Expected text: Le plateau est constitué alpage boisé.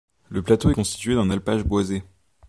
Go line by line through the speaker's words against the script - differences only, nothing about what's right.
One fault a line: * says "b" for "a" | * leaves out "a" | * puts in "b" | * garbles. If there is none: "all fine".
* puts in "d'un"